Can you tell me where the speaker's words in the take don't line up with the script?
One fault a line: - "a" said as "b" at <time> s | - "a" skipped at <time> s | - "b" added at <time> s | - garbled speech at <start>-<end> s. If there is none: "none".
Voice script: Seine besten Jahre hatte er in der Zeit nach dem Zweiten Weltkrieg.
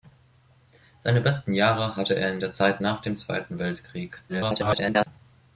- garbled speech at 4.3-5.1 s